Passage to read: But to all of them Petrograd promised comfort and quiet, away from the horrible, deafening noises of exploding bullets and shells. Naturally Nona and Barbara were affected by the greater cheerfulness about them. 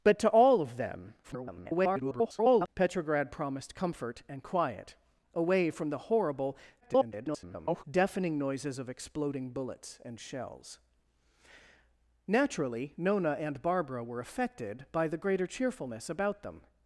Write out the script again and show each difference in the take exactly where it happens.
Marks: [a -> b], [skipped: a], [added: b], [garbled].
But to all of them [garbled] Petrograd promised comfort and quiet, away from the horrible, [garbled] deafening noises of exploding bullets and shells. Naturally Nona and Barbara were affected by the greater cheerfulness about them.